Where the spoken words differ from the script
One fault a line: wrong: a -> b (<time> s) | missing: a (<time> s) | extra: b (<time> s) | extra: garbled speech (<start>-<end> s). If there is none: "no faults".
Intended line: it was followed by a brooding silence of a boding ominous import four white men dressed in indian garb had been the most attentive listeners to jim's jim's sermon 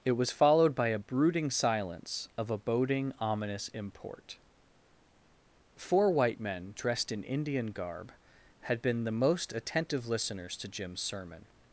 missing: jim's (11.0 s)